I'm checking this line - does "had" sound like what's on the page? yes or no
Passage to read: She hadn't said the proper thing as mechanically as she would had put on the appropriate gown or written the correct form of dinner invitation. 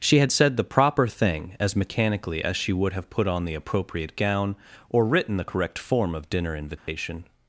no